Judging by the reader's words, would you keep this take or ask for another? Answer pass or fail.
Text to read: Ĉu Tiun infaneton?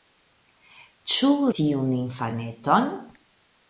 pass